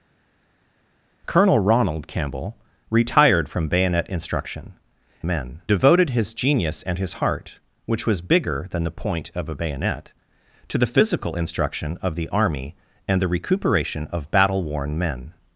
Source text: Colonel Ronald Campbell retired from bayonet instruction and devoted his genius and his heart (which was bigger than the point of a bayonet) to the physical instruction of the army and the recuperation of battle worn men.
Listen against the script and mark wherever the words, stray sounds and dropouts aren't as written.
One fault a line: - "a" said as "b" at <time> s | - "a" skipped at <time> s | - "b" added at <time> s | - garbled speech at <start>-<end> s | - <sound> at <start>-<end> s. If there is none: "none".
- "and" said as "men" at 5.3 s